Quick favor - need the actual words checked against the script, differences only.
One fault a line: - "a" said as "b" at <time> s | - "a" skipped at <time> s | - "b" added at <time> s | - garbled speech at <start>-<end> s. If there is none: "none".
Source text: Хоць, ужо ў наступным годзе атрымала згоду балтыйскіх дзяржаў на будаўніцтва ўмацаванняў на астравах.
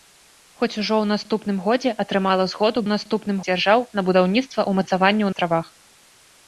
- "балтыйскіх" said as "наступным" at 2.9 s
- "на" skipped at 5.3 s